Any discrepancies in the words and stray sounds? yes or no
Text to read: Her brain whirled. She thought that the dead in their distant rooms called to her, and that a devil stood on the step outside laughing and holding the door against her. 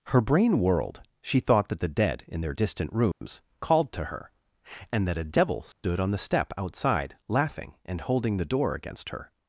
yes